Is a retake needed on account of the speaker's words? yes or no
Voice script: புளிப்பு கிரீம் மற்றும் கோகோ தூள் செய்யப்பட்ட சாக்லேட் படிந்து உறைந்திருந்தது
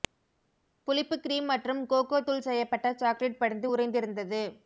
no